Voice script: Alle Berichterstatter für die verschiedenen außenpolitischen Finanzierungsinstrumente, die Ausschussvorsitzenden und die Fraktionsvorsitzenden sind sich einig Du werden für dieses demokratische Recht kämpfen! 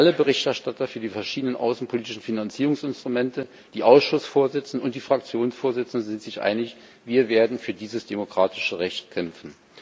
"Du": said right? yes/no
no